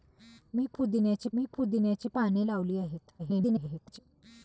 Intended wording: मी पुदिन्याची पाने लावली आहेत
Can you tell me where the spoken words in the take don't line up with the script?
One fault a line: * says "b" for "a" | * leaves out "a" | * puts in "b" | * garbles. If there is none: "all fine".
* puts in "मी पुदिन्याची"
* garbles